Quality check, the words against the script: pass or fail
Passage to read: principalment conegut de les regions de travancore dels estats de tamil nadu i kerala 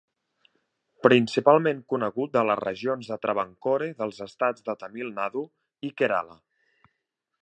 pass